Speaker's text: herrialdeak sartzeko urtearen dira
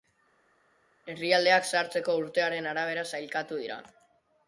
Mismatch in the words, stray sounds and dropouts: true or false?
true